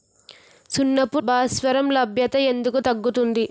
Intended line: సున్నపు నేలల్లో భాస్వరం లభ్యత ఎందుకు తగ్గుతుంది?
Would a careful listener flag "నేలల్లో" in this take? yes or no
yes